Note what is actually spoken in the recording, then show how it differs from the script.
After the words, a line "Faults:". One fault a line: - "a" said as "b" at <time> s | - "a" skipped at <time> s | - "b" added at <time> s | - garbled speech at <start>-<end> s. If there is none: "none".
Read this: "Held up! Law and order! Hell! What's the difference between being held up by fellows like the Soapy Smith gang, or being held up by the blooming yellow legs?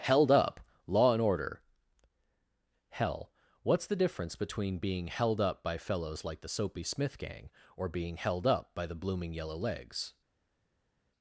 "Held up! Law and order! Hell! What's the difference between being held up by fellows like the Soapy Smith gang, or being held up by the blooming yellow legs?
Faults:
none